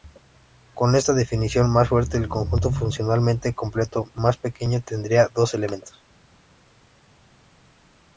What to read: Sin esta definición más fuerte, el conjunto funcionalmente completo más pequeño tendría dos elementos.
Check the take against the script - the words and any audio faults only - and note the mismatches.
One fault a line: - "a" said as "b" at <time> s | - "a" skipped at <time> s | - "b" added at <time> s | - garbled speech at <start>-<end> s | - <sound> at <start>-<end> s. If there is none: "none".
- "Sin" said as "Con" at 0.7 s